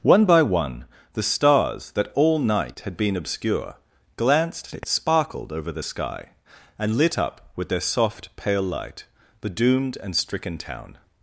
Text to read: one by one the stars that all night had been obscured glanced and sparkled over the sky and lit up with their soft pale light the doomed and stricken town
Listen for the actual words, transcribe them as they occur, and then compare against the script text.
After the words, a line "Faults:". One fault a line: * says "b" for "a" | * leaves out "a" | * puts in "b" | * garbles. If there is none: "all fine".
one by one the stars that all night had been obscure glanced and sparkled over the sky and lit up with their soft pale light the doomed and stricken town
Faults:
* says "obscure" for "obscured"